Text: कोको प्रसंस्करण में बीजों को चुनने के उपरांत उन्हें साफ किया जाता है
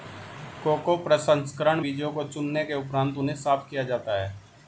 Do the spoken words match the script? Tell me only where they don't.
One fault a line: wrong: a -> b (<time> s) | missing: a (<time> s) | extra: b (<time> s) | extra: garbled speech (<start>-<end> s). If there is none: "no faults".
missing: में (1.8 s)